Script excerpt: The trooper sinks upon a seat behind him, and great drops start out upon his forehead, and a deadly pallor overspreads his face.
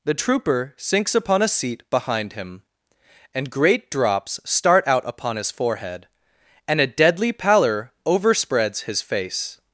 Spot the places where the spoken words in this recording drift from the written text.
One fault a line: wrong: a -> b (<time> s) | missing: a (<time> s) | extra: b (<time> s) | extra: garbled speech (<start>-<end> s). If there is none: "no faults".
no faults